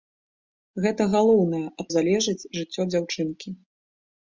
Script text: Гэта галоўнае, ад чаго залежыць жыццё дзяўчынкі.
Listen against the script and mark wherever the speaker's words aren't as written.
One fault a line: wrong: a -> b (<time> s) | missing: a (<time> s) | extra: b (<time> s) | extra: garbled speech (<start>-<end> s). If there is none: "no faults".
missing: чаго (1.9 s)